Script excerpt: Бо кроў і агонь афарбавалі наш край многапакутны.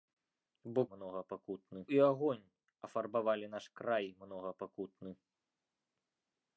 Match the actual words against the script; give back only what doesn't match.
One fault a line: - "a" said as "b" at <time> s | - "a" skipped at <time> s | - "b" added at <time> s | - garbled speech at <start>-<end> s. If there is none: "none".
- "кроў" said as "многапакутны" at 0.9 s